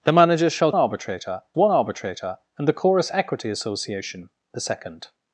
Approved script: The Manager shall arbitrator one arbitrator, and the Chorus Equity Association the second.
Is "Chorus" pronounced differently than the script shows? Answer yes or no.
no